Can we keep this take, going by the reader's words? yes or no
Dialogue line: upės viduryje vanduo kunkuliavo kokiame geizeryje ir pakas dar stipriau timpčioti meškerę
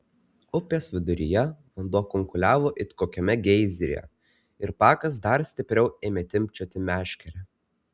no